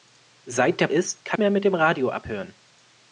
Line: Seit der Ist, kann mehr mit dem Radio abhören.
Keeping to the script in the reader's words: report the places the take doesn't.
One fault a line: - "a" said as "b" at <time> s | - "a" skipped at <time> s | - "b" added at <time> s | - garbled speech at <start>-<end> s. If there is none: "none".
none